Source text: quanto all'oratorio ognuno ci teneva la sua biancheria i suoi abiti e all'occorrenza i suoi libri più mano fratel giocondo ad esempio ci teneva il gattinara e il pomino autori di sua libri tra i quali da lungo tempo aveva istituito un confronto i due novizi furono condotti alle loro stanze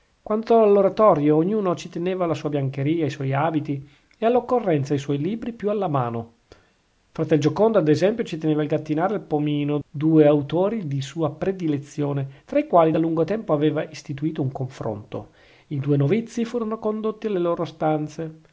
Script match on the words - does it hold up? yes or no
no